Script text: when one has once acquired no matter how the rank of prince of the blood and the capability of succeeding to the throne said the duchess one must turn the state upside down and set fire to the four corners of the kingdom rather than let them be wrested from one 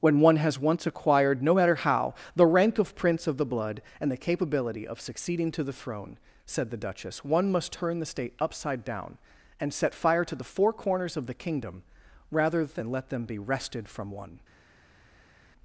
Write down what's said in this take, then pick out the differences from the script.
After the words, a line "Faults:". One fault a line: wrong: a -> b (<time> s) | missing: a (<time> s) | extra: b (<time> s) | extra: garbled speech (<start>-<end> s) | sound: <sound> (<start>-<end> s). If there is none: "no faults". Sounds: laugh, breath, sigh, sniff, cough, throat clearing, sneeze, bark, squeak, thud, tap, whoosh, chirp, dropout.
when one has once acquired no matter how the rank of prince of the blood and the capability of succeeding to the throne said the duchess one must turn the state upside down and set fire to the four corners of the kingdom rather than let them be wrested from one
Faults:
no faults